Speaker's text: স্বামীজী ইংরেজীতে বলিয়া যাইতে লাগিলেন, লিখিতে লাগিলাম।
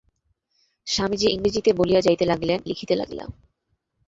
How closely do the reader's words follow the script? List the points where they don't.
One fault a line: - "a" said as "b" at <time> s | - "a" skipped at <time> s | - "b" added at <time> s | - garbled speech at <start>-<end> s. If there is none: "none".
none